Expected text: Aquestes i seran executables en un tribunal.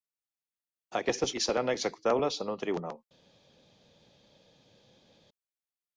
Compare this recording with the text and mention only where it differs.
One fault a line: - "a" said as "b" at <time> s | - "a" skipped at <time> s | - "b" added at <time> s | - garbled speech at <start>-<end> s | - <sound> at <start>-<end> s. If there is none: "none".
none